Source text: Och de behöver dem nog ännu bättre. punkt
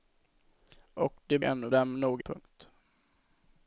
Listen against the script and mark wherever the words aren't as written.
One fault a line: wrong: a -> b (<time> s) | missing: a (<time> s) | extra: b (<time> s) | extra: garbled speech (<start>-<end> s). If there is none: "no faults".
wrong: behöver -> ännu (1.4 s)
missing: ännu bättre (2.2 s)